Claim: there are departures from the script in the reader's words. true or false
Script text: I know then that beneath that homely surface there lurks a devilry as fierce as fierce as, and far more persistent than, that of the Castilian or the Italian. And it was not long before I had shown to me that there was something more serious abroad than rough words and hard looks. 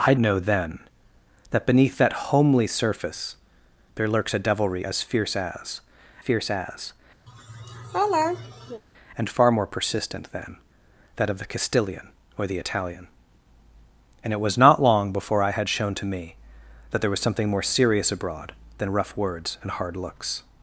false